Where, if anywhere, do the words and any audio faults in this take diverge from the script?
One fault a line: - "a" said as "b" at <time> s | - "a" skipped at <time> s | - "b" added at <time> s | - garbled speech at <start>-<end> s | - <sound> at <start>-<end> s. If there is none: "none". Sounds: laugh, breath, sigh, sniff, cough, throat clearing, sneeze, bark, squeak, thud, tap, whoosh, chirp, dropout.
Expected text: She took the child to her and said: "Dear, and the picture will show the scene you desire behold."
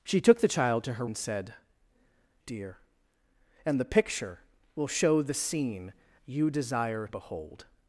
none